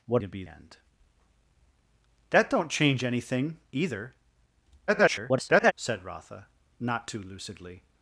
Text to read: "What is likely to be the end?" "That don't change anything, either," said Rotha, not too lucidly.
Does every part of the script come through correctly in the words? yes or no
no